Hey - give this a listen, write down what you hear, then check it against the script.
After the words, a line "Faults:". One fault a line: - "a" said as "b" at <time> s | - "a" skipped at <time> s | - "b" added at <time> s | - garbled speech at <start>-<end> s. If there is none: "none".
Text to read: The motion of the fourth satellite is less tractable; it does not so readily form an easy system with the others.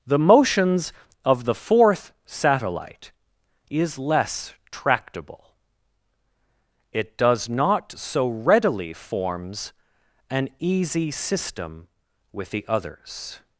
The motions of the fourth satellite is less tractable; it does not so readily forms an easy system with the others.
Faults:
- "motion" said as "motions" at 0.2 s
- "form" said as "forms" at 8.9 s